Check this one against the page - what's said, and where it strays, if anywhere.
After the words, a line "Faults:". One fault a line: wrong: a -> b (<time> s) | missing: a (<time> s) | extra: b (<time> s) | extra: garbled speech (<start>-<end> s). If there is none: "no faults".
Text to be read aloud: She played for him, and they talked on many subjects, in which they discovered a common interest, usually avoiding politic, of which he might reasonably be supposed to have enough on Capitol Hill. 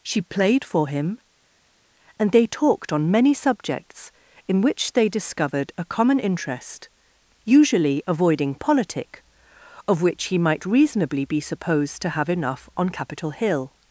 She played for him, and they talked on many subjects, in which they discovered a common interest, usually avoiding politic, of which he might reasonably be supposed to have enough on Capitol Hill.
Faults:
no faults